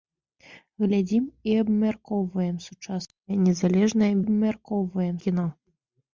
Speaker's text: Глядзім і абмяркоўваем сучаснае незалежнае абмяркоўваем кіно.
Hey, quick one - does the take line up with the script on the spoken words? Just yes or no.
yes